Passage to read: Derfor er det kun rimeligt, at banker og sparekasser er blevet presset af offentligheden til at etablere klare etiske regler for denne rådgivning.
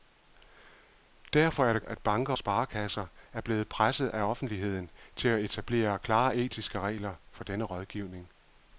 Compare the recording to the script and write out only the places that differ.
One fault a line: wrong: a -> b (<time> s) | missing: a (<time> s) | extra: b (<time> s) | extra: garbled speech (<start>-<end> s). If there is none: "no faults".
missing: kun rimeligt (1.8 s)
missing: og (2.3 s)